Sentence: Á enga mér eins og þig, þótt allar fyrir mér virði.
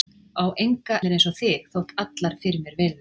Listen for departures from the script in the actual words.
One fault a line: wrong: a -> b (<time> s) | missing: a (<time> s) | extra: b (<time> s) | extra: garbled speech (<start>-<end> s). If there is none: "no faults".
no faults